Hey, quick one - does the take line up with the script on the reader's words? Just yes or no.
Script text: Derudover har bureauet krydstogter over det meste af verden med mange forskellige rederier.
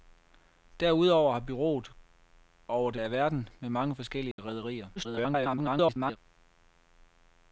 no